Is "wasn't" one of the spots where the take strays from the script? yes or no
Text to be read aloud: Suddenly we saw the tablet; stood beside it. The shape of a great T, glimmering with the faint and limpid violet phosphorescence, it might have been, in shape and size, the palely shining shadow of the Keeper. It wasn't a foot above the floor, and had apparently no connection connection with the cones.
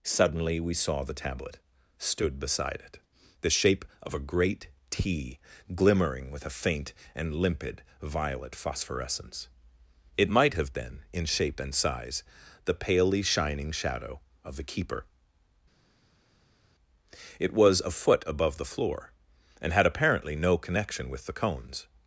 yes